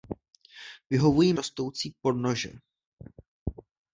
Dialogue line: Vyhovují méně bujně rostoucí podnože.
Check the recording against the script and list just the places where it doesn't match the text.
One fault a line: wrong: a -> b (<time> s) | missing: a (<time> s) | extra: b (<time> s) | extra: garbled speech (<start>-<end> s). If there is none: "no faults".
missing: méně bujně (1.3 s)